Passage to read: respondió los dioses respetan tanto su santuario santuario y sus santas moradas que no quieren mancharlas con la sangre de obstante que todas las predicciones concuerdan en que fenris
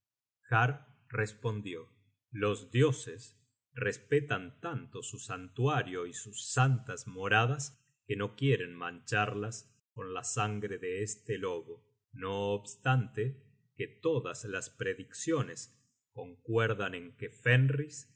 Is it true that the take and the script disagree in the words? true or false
true